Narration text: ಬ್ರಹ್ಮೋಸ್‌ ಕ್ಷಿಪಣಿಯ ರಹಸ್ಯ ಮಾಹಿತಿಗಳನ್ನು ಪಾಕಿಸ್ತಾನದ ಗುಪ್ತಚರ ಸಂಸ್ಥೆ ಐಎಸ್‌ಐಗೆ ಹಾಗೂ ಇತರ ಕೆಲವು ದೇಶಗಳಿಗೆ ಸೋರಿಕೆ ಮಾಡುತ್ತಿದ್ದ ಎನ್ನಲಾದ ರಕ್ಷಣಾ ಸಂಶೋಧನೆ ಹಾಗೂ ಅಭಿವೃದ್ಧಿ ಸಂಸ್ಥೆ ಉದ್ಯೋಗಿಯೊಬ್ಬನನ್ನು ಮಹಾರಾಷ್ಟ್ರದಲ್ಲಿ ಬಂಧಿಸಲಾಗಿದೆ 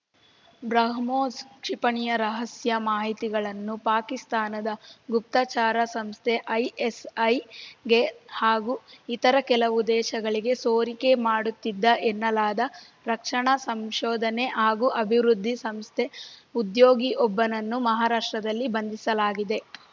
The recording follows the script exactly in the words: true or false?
true